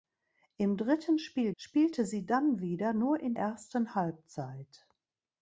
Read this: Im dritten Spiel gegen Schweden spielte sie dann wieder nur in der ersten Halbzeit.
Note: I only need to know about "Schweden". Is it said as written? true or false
false